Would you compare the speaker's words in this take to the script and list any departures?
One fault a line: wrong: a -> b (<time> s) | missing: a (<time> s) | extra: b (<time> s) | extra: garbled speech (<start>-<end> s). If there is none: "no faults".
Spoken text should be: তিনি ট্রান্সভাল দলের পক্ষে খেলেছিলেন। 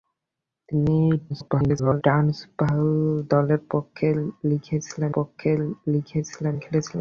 extra: garbled speech (1.3-2.0 s)
extra: পক্ষে (5.1 s)